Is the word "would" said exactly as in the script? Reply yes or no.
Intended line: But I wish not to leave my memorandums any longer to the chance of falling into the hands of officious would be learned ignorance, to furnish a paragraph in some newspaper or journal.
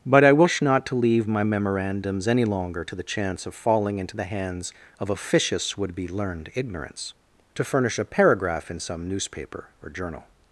yes